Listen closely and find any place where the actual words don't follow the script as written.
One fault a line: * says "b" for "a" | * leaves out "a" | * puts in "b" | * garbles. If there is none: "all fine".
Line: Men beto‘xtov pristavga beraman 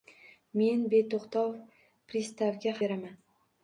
all fine